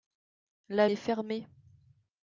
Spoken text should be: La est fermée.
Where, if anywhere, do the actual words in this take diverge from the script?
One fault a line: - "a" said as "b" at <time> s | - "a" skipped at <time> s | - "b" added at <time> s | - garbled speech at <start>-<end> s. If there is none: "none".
none